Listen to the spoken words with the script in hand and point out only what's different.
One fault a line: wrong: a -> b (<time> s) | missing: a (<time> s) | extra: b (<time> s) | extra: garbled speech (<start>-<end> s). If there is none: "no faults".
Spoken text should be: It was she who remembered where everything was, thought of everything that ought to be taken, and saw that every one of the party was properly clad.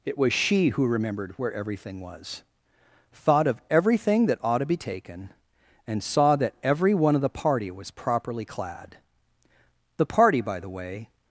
extra: The party by the way (10.0 s)